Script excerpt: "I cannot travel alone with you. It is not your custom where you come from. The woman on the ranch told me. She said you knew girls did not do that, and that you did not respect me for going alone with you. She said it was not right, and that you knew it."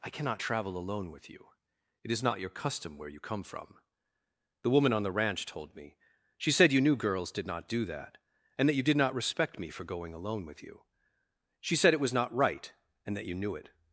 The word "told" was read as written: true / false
true